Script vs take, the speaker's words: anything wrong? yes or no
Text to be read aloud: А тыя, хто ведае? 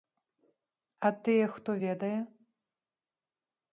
no